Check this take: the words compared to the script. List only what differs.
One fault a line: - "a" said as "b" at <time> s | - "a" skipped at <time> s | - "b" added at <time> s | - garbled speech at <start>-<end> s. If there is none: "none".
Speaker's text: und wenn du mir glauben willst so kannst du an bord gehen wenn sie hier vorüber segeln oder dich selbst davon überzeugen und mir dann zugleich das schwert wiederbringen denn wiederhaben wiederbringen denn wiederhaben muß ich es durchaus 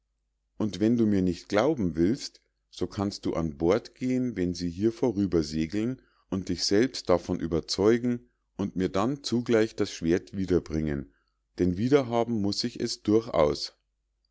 - "nicht" added at 1.2 s
- "oder" said as "und" at 6.3 s
- "wiederbringen denn wiederhaben" skipped at 12.4 s